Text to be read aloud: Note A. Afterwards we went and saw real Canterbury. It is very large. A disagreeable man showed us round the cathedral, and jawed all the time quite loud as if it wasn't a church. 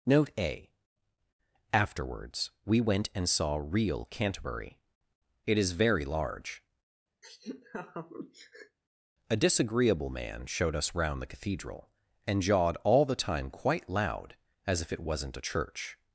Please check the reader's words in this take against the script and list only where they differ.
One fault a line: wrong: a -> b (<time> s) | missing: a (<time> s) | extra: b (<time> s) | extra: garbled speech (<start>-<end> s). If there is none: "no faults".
no faults